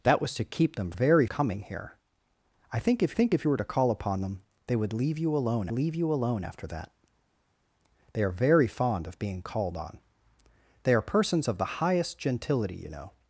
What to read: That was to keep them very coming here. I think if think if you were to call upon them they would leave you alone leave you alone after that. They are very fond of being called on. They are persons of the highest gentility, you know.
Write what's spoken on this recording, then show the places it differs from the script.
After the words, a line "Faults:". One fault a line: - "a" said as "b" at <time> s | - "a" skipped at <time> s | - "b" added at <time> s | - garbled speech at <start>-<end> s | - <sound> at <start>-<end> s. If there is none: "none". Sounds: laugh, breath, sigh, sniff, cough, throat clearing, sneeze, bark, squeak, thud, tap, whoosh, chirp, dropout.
That was to keep them very coming here. I think if think if you were to call upon them they would leave you alone leave you alone after that. They are very fond of being called on. They are persons of the highest gentility, you know.
Faults:
none